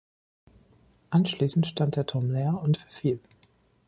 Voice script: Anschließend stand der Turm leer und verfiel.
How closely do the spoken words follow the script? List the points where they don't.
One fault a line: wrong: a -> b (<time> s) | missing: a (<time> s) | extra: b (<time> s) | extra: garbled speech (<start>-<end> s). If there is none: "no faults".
no faults